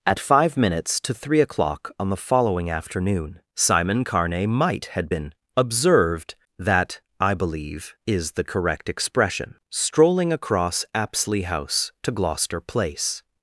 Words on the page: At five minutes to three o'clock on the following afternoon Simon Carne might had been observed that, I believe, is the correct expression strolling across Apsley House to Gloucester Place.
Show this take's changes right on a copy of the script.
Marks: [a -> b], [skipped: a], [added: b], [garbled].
At five minutes to three o'clock on the following afternoon Simon Carne might had been observed that, I believe, is the correct expression strolling across Apsley House to Gloucester Place.